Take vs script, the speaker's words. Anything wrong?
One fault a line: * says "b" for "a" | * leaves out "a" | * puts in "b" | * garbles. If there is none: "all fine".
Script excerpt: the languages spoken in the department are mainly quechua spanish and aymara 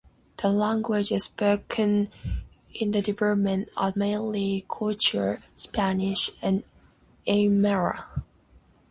all fine